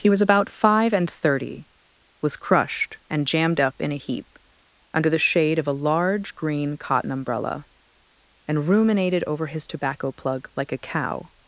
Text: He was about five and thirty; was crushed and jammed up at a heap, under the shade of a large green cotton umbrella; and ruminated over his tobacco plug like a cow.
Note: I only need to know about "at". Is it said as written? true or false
false